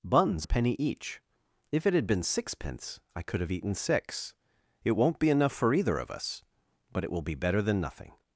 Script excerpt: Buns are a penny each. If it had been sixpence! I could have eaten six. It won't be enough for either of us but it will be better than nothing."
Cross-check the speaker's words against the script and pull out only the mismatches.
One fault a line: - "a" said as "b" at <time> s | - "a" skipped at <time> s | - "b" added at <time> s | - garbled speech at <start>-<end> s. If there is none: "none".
- "are" skipped at 0.5 s